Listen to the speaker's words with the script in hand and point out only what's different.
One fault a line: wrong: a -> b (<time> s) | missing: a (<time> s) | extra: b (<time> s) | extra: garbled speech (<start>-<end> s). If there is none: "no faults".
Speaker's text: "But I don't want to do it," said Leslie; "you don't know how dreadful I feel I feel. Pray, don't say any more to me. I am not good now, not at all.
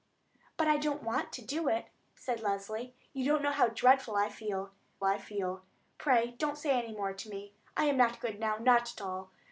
no faults